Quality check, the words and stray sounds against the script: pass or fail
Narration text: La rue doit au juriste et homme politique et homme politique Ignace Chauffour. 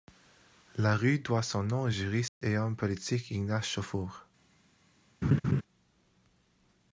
fail